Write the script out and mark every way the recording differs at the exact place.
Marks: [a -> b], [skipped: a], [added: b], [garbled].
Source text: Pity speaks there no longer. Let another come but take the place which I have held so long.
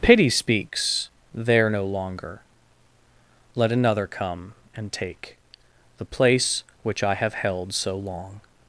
Pity speaks there no longer. Let another come [but -> and] take the place which I have held so long.